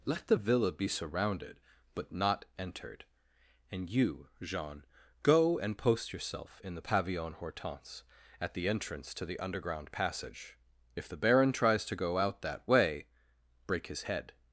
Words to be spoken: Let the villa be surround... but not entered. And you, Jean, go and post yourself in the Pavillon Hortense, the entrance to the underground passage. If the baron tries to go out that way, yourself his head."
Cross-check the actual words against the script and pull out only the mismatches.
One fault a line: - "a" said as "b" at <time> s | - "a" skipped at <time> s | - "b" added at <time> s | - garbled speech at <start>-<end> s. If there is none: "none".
- "surround" said as "surrounded" at 0.9 s
- "at" added at 8.4 s
- "yourself" said as "break" at 13.7 s